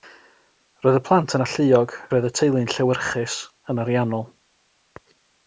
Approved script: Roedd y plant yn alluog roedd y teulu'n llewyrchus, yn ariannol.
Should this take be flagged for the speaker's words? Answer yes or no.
no